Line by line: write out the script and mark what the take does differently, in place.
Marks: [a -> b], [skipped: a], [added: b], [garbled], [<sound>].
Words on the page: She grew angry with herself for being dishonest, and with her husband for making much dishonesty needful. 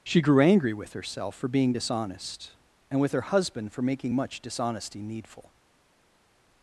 She grew angry with herself for being dishonest, and with her husband for making much dishonesty needful.